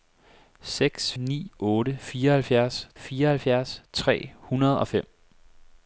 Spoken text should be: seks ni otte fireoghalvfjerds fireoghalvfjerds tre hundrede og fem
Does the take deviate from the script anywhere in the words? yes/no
no